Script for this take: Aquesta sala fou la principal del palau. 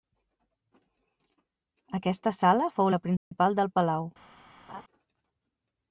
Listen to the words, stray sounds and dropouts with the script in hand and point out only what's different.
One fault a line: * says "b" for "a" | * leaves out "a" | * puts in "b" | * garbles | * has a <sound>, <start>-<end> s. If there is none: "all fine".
* has a dropout, 3.2-3.3 s
* has a laugh, 4.7-4.8 s